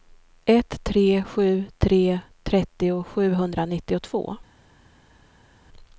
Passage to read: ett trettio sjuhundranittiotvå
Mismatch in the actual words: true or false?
true